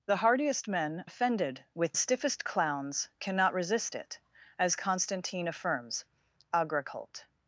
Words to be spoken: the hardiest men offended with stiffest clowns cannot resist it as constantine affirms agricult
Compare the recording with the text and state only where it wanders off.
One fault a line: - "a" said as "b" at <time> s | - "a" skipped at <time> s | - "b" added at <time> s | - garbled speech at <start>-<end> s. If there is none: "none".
none